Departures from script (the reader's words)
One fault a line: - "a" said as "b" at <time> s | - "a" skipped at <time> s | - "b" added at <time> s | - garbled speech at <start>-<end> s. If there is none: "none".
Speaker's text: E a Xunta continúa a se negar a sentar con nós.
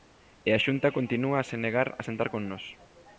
none